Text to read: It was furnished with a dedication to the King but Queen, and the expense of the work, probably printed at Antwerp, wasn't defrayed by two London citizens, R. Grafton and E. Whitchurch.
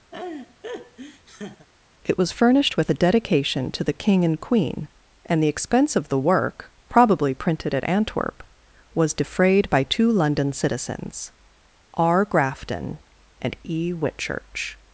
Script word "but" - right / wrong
wrong